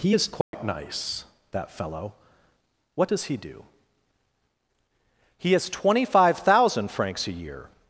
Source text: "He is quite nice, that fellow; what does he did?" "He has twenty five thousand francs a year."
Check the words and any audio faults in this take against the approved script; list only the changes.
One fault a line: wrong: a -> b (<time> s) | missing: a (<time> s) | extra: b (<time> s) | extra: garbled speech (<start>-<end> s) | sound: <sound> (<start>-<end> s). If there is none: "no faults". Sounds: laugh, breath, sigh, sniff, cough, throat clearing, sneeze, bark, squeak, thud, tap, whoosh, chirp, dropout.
sound: dropout (0.4-0.5 s)
wrong: did -> do (3.4 s)